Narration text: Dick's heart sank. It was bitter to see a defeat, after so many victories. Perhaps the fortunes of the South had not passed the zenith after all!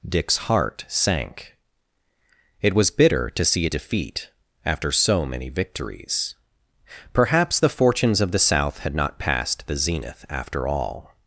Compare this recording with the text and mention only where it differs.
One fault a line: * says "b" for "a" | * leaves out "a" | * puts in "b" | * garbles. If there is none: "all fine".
all fine